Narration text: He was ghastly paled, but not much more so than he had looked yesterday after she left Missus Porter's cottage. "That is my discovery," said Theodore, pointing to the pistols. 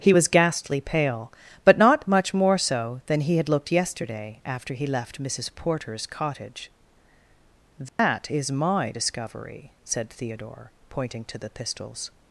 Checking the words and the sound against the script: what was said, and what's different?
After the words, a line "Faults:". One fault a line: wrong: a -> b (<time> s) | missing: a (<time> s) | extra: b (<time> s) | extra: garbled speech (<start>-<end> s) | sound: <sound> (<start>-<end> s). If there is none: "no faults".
He was ghastly pale, but not much more so than he had looked yesterday after he left Missus Porter's cottage. "That is my discovery," said Theodore, pointing to the pistols.
Faults:
wrong: paled -> pale (0.8 s)
wrong: she -> he (4.7 s)
sound: dropout (7.9-8.0 s)